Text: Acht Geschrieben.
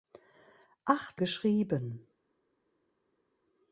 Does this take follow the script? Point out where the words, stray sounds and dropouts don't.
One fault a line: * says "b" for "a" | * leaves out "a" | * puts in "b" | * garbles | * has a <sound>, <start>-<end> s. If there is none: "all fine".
all fine